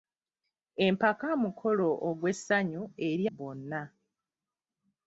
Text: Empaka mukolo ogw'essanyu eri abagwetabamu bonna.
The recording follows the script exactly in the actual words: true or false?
false